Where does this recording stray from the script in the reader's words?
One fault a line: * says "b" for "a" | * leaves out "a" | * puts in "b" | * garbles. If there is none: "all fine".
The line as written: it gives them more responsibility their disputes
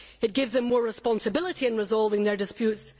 * puts in "in resolving"